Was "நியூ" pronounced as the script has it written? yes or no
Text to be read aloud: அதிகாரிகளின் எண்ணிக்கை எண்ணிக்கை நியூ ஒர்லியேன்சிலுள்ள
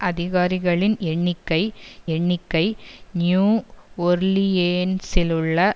yes